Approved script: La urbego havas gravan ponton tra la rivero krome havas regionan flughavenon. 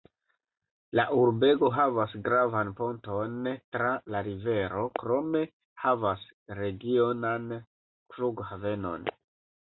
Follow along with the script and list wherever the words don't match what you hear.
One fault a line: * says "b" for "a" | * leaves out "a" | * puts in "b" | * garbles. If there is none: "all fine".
all fine